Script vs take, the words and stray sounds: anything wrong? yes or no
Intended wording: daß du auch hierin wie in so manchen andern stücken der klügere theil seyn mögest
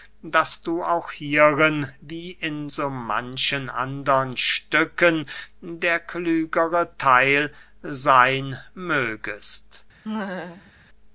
yes